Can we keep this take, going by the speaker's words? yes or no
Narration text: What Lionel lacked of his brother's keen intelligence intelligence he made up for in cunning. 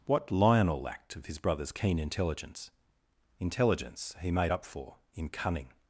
yes